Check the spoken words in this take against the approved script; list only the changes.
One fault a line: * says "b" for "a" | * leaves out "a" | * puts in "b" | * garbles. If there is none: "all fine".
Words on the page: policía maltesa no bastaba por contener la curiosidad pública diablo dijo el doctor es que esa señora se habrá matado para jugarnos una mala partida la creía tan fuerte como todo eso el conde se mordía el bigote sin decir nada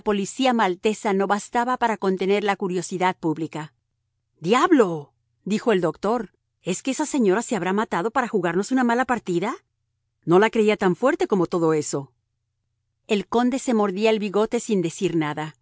* says "para" for "por"
* puts in "no"